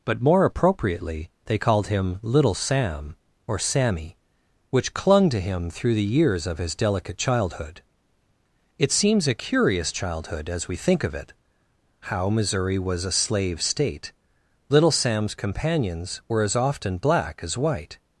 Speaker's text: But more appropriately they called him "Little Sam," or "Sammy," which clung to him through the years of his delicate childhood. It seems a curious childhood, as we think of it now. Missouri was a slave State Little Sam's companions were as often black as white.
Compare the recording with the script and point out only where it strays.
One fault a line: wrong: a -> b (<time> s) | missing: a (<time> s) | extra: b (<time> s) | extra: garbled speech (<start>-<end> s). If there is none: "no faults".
wrong: now -> how (12.1 s)